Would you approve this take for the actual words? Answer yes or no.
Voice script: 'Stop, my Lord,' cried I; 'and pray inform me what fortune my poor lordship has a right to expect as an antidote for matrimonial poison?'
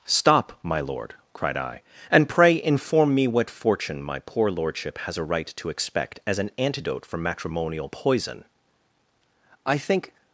no